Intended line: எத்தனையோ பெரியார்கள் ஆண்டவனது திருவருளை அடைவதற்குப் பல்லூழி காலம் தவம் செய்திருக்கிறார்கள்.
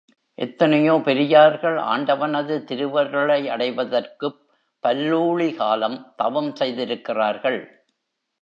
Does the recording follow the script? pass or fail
pass